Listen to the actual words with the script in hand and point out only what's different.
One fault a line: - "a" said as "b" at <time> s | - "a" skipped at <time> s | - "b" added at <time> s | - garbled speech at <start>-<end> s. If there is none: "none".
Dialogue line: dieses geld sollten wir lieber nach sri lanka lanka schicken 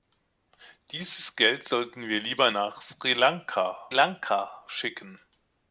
none